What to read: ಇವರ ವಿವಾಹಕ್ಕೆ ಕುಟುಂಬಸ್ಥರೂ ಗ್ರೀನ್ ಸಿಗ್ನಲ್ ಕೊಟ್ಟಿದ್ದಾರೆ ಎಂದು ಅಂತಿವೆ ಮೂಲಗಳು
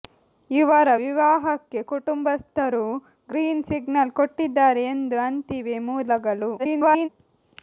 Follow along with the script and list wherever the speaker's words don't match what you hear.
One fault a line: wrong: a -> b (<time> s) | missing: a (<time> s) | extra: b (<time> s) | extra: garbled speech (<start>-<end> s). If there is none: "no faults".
extra: garbled speech (6.6-7.1 s)